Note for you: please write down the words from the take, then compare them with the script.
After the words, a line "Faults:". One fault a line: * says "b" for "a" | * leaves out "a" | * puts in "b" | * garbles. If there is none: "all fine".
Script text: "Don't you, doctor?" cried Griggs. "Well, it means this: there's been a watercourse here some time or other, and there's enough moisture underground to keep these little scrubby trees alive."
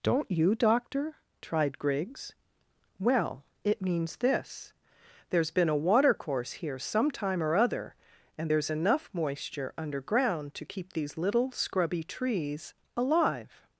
"Don't you, doctor?" tried Griggs. "Well, it means this: there's been a watercourse here some time or other, and there's enough moisture underground to keep these little scrubby trees alive."
Faults:
* says "tried" for "cried"